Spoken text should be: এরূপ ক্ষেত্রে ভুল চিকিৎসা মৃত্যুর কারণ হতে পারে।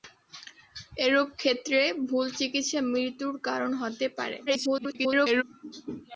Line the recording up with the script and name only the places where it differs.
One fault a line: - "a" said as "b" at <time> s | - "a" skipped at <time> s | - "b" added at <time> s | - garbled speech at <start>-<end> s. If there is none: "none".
- garbled speech at 4.5-5.4 s